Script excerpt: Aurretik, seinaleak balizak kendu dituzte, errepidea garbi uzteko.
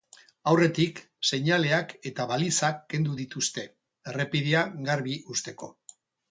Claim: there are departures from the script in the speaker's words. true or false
true